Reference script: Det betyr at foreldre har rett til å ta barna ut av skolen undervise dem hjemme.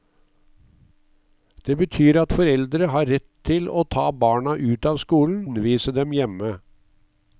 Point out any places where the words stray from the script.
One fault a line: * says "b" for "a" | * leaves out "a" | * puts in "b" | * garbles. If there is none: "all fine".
all fine